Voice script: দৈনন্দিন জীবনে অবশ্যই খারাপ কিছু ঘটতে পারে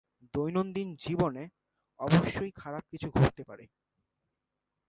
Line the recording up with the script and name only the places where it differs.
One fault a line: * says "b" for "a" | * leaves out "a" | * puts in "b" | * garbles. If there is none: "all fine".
all fine